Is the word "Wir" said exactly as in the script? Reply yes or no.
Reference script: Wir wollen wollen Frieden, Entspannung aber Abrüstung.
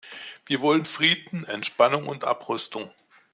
yes